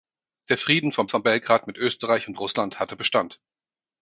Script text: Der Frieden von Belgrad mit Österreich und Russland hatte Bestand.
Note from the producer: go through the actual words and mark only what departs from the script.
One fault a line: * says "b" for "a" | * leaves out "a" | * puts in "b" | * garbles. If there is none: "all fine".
* puts in "von"